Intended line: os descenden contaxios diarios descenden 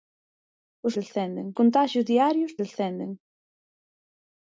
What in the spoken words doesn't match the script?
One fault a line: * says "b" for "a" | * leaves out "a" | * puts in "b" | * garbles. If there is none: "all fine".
all fine